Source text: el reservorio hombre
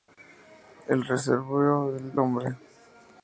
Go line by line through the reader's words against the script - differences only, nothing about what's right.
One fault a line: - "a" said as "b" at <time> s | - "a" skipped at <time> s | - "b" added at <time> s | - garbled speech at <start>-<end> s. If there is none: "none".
none